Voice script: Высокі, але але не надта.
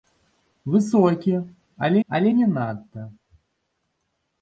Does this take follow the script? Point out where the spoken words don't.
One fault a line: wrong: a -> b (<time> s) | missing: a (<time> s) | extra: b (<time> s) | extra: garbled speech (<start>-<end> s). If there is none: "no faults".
no faults